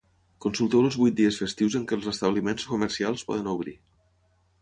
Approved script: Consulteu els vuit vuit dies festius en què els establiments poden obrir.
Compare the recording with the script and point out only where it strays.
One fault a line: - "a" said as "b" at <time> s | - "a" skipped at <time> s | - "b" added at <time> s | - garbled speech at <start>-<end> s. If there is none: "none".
- "vuit" skipped at 1.2 s
- "comercials" added at 2.7 s